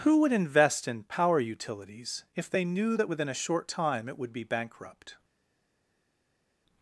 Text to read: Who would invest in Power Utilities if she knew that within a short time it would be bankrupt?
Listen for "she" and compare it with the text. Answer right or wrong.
wrong